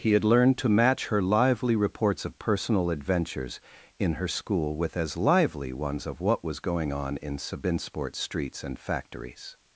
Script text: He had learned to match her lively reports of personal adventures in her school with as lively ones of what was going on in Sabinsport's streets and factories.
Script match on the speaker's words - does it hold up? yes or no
yes